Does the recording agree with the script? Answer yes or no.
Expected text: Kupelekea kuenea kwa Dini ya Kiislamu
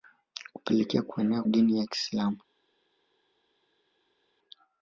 no